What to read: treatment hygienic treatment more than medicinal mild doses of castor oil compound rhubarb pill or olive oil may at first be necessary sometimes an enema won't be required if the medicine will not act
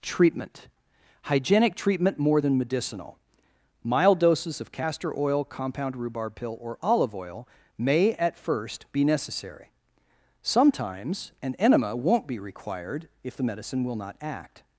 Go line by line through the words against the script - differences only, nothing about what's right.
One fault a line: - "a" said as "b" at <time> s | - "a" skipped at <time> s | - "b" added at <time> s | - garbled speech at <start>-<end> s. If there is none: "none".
none